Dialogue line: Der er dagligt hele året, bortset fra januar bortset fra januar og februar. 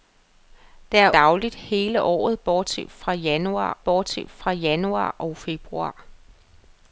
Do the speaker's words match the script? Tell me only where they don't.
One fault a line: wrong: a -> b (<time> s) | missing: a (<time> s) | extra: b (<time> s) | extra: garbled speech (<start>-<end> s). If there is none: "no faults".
no faults